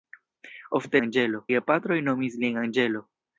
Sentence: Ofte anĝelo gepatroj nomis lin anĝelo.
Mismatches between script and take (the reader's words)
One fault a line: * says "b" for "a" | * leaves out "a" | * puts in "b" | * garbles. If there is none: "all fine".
all fine